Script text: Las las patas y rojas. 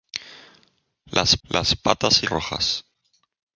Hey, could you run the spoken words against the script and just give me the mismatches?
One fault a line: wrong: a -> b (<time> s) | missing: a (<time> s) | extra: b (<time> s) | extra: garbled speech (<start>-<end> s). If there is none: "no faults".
no faults